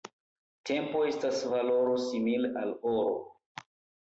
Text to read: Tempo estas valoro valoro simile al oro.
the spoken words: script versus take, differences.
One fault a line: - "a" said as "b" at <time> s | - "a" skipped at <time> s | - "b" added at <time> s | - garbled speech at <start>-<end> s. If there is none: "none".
- "valoro" skipped at 2.0 s